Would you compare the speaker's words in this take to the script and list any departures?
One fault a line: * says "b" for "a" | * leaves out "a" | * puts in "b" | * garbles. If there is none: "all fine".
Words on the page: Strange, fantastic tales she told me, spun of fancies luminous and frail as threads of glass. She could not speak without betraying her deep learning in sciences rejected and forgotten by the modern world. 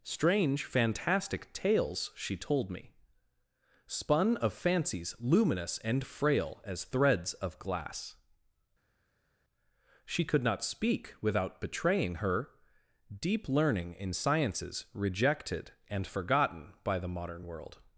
all fine